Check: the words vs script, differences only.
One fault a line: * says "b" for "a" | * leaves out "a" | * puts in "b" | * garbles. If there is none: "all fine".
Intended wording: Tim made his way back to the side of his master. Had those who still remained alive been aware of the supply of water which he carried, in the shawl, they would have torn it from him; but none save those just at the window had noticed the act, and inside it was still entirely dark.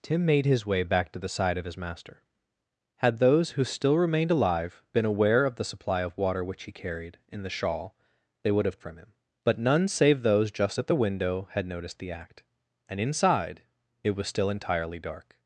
* leaves out "torn it"